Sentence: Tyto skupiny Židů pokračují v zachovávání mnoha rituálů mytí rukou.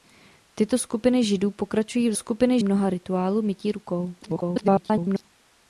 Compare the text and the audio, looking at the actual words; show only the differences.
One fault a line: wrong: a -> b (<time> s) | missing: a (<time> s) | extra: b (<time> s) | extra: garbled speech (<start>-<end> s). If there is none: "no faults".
wrong: zachovávání -> skupiny (2.1 s)
extra: garbled speech (4.2-5.2 s)